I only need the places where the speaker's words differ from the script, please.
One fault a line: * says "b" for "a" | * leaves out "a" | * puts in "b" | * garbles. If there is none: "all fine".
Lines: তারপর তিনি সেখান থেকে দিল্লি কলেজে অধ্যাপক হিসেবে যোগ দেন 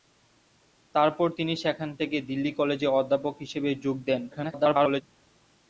* garbles